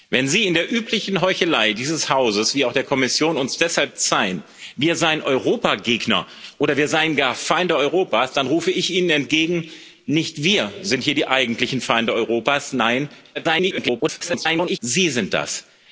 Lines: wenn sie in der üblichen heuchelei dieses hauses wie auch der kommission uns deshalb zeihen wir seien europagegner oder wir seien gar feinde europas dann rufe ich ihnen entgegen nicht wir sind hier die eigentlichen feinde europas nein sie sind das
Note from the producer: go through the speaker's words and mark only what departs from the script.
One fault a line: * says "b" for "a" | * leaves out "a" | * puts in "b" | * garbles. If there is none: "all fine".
* garbles